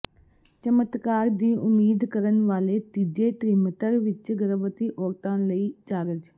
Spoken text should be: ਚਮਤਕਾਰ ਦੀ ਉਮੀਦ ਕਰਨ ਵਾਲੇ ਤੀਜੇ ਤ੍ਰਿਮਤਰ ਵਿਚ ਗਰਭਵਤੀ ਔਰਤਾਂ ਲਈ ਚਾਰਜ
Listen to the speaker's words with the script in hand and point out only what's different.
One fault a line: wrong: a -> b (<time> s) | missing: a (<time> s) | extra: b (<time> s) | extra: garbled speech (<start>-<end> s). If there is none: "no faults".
no faults